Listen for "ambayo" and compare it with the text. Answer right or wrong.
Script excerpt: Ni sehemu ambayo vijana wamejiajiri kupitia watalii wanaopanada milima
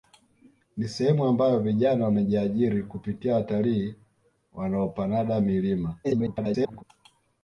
right